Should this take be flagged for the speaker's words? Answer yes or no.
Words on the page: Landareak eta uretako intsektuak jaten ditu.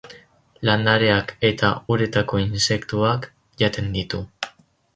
no